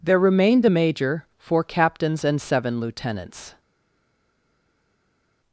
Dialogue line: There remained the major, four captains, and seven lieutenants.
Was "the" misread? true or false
true